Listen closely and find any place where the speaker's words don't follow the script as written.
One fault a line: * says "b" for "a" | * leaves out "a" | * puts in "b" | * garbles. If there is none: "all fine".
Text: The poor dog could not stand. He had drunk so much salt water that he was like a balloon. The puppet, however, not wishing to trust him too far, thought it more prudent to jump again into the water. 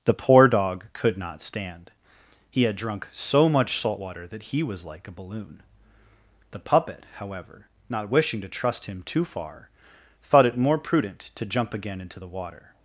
all fine